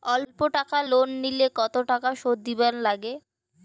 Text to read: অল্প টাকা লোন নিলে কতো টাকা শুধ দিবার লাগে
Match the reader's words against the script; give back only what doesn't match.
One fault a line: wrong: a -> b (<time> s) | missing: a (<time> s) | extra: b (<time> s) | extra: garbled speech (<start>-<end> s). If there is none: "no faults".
no faults